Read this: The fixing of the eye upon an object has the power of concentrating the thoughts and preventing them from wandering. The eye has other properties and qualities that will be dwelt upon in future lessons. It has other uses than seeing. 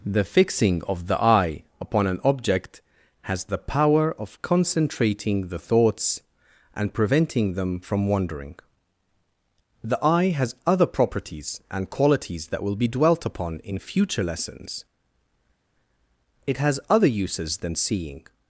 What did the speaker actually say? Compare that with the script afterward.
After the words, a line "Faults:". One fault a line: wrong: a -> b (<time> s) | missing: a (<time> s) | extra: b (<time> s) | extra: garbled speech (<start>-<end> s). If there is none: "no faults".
The fixing of the eye upon an object has the power of concentrating the thoughts and preventing them from wandering. The eye has other properties and qualities that will be dwelt upon in future lessons. It has other uses than seeing.
Faults:
no faults